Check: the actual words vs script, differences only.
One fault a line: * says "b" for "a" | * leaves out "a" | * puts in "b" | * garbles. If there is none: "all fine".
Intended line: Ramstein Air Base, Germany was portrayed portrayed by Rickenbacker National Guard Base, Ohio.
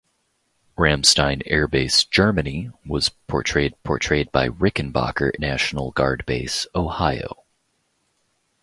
all fine